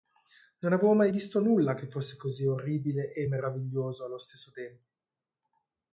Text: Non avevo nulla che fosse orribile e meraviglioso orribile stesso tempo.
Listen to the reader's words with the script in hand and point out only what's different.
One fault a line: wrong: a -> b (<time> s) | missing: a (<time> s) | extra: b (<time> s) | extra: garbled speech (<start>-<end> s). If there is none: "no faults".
extra: mai visto (0.9 s)
extra: così (2.1 s)
wrong: orribile -> allo (4.0 s)